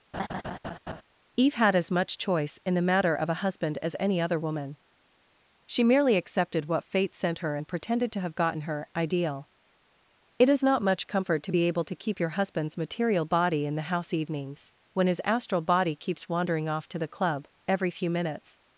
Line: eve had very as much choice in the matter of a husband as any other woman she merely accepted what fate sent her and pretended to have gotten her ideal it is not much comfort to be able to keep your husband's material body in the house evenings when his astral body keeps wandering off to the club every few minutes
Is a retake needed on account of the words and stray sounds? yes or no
yes